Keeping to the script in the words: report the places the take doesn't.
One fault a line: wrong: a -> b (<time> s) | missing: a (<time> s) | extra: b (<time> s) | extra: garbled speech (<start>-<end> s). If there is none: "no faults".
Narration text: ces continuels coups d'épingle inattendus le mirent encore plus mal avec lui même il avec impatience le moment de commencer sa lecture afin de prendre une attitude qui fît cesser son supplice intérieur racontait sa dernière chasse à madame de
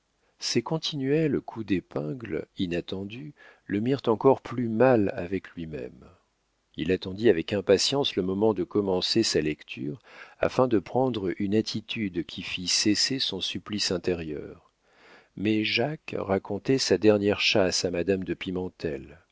extra: attendit (6.9 s)
extra: mais jacques (15.4 s)